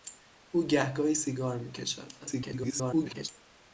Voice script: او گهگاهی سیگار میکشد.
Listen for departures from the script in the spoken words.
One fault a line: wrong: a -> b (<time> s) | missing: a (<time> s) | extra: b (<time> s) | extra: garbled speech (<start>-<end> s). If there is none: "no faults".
extra: garbled speech (2.2-3.3 s)